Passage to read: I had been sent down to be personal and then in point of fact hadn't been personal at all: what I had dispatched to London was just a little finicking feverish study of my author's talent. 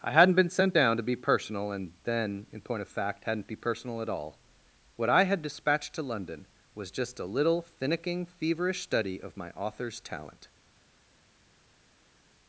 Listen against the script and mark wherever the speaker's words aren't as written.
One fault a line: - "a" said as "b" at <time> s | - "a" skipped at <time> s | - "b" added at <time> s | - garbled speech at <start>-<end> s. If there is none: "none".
- "had" said as "hadn't" at 0.1 s
- "been" said as "be" at 3.5 s